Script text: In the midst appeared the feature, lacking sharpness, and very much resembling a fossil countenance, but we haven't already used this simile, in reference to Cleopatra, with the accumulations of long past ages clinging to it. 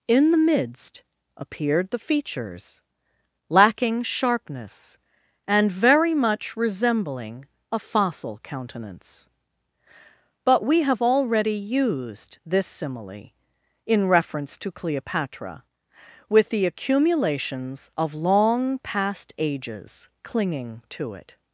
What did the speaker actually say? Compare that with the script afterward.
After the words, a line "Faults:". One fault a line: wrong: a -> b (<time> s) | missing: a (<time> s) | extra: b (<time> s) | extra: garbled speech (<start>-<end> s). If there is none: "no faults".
In the midst appeared the features, lacking sharpness, and very much resembling a fossil countenance, but we have already used this simile, in reference to Cleopatra, with the accumulations of long past ages clinging to it.
Faults:
wrong: feature -> features (2.0 s)
wrong: haven't -> have (10.8 s)